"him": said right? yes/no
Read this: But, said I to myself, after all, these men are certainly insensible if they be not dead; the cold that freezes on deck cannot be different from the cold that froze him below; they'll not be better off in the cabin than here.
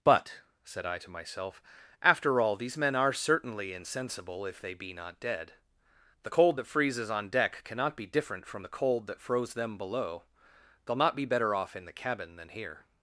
no